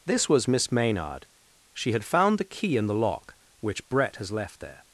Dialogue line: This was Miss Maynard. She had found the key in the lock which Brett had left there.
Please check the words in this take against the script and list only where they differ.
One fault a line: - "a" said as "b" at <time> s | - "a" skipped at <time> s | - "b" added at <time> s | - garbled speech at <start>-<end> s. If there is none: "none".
- "had" said as "has" at 4.2 s